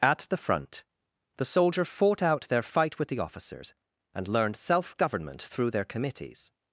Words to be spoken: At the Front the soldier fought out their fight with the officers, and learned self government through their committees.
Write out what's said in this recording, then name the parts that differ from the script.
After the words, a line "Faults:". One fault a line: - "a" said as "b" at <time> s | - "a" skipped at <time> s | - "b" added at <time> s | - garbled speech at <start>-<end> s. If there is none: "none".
At the Front the soldier fought out their fight with the officers, and learned self government through their committees.
Faults:
none